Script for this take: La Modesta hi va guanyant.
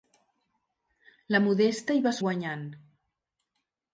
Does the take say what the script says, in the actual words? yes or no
yes